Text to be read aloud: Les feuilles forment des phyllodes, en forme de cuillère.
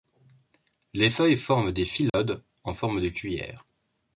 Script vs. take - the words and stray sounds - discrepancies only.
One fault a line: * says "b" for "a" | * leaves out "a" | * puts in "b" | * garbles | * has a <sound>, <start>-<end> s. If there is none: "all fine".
* has a dropout, 2.1-2.1 s